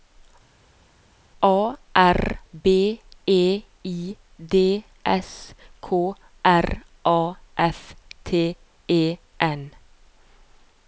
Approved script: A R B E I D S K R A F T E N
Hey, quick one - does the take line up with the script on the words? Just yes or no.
yes